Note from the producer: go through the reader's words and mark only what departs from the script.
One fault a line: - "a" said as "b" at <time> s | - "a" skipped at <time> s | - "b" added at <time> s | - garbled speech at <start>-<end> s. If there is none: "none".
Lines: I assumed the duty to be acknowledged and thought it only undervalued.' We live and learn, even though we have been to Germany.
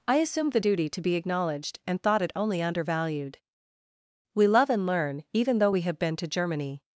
- "live" said as "love" at 4.5 s